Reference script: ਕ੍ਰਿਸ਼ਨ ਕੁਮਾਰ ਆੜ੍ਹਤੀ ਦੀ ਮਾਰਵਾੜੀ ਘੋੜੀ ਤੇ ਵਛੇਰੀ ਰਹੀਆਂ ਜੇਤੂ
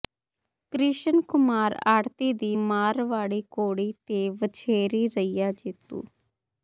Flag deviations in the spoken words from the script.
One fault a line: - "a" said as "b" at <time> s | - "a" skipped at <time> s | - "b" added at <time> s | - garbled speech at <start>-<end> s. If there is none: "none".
none